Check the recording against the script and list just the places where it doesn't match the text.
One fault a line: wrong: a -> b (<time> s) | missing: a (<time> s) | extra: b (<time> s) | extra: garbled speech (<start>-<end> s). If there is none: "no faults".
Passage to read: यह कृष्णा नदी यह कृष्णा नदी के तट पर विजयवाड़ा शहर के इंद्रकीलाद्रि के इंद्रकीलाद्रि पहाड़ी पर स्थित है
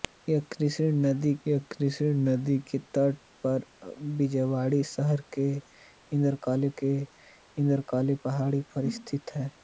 no faults